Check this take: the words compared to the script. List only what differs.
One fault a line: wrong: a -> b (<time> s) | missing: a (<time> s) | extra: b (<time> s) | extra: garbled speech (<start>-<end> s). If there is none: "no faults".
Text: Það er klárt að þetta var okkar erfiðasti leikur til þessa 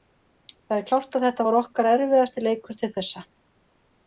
no faults